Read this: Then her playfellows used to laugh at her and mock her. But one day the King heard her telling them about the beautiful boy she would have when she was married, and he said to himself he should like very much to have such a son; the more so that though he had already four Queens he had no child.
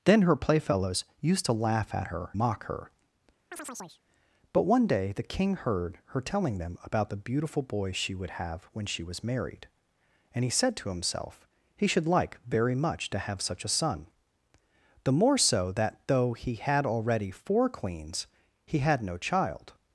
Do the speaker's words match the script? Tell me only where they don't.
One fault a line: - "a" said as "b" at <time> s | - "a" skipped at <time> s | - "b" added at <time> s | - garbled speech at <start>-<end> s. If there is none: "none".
- "and" skipped at 2.4 s